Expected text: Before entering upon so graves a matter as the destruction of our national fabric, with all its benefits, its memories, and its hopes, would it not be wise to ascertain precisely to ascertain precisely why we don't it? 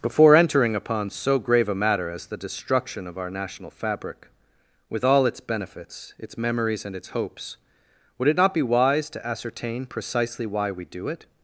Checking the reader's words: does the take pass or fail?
fail